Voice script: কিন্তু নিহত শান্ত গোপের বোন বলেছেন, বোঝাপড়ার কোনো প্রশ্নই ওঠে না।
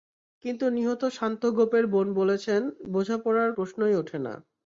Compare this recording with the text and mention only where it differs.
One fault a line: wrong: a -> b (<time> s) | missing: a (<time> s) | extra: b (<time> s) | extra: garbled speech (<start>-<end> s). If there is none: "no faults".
missing: কোনো (3.5 s)